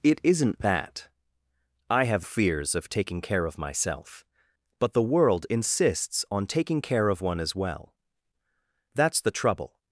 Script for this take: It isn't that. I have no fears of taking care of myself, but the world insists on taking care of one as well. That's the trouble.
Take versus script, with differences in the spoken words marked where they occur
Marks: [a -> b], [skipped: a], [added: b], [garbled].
It isn't that. I have [skipped: no] fears of taking care of myself, but the world insists on taking care of one as well. That's the trouble.